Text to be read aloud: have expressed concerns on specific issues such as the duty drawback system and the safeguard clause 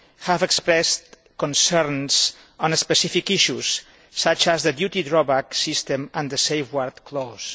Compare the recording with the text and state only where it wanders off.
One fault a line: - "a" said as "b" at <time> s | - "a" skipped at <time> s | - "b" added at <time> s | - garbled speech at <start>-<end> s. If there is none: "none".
none